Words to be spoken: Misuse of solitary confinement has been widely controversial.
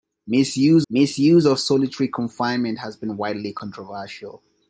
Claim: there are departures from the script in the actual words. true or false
true